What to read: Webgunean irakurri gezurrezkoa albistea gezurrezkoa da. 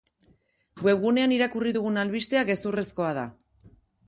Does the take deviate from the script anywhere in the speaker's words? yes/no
yes